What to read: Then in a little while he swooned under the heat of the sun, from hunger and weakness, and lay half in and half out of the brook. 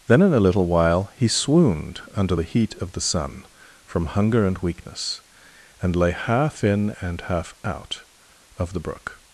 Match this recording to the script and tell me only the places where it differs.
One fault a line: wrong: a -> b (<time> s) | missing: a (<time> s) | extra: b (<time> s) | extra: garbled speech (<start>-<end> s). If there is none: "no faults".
no faults